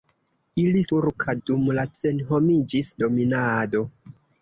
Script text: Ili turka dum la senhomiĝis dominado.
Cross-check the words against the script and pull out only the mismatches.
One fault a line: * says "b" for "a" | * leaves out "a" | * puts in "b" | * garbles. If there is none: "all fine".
all fine